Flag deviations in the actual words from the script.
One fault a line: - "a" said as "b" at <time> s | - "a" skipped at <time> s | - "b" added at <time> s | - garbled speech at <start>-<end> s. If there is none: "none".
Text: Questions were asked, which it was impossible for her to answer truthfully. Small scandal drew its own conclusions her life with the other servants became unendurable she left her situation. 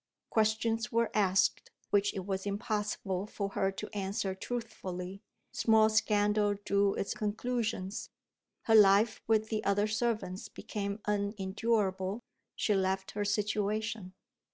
- "own" skipped at 7.1 s